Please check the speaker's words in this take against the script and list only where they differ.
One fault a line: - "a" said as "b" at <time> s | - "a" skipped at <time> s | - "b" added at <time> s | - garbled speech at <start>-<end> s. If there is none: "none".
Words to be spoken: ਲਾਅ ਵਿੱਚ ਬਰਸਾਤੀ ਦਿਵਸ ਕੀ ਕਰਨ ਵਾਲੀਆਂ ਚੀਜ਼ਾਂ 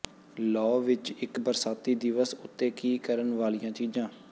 - "ਇੱਕ" added at 1.1 s
- "ਉੱਤੇ" added at 2.3 s